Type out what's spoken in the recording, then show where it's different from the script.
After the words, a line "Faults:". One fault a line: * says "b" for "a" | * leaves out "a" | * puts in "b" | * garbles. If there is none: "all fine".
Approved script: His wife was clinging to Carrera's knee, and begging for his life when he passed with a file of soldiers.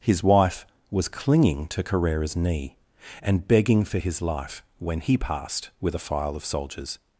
His wife was clinging to Carrera's knee, and begging for his life when he passed with a file of soldiers.
Faults:
all fine